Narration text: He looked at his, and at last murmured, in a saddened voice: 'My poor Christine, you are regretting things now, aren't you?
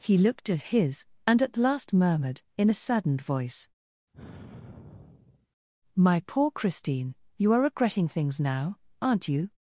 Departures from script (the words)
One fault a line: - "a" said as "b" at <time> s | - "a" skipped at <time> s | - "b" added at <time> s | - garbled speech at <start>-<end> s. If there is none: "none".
none